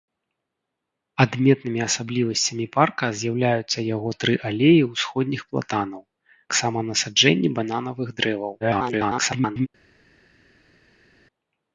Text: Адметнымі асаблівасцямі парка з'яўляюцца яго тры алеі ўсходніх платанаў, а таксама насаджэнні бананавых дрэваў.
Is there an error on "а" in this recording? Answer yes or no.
yes